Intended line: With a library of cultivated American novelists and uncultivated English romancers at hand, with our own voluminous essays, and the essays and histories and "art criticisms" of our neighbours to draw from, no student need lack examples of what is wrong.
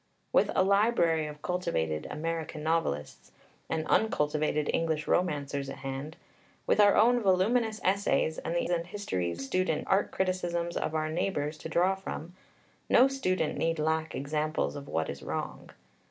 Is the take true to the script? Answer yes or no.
no